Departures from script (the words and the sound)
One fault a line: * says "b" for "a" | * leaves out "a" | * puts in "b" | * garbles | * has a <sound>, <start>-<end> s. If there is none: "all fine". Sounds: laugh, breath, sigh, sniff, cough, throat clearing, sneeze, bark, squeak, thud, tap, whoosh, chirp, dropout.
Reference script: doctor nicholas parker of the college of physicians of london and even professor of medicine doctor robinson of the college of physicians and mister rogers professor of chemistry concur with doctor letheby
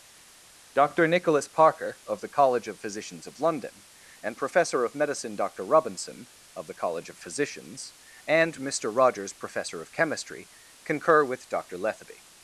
* leaves out "even"